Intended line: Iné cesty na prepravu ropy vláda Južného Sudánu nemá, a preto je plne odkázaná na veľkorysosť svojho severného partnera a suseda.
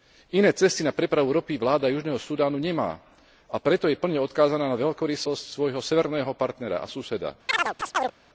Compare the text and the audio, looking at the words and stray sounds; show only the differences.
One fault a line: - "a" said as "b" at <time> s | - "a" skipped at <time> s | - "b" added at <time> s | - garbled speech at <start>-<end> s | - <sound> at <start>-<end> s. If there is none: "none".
- chirp at 7.5-8.1 s